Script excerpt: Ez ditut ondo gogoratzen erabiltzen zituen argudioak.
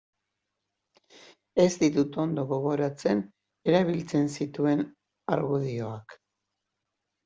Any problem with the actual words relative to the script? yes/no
no